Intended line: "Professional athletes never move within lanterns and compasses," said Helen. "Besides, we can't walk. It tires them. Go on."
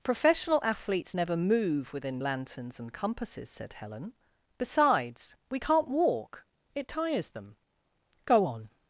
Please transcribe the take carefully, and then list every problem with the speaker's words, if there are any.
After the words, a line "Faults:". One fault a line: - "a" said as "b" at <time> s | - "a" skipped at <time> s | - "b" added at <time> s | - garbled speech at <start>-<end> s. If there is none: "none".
"Professional athletes never move within lanterns and compasses," said Helen. "Besides, we can't walk. It tires them. Go on."
Faults:
none